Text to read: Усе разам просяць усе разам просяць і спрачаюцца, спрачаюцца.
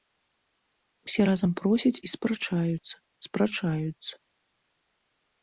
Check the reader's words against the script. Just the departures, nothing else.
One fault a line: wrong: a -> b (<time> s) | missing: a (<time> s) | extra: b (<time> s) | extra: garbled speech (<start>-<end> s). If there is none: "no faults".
missing: усе разам просяць (2.0 s)